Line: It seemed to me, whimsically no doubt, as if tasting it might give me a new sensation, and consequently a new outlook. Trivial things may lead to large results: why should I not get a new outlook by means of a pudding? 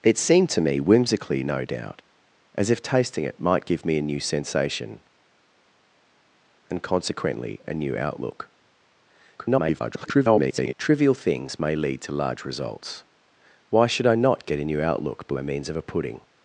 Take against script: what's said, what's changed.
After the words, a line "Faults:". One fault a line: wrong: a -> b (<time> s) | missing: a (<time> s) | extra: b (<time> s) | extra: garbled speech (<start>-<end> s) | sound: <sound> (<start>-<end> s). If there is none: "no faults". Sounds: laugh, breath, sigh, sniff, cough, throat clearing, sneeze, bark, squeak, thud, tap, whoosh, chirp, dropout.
It seemed to me, whimsically no doubt, as if tasting it might give me a new sensation, and consequently a new outlook. [garbled] Trivial things may lead to large results: why should I not get a new outlook by means of a pudding?
Faults:
extra: garbled speech (9.4-10.7 s)